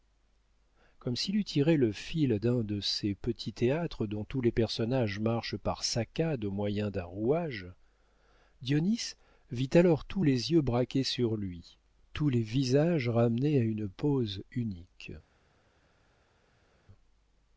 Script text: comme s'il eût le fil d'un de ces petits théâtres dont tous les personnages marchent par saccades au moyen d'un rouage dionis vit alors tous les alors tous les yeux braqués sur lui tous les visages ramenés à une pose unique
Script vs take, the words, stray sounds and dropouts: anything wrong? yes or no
yes